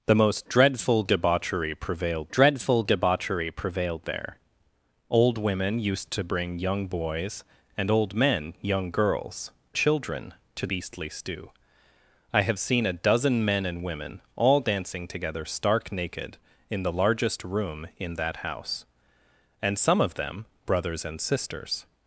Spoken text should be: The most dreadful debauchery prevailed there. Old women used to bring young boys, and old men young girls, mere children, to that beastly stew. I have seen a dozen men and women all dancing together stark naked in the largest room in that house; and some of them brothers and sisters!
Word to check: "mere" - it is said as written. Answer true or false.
false